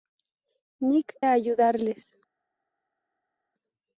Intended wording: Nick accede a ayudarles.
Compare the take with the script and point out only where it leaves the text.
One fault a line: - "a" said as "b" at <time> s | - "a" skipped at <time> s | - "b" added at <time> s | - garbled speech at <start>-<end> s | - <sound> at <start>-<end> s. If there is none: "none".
- "accede" skipped at 1.1 s